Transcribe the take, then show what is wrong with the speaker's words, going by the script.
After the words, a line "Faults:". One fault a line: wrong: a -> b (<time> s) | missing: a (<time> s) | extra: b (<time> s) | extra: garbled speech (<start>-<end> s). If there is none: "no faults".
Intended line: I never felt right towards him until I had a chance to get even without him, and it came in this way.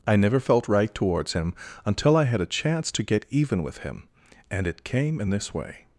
I never felt right towards him until I had a chance to get even with him, and it came in this way.
Faults:
wrong: without -> with (3.6 s)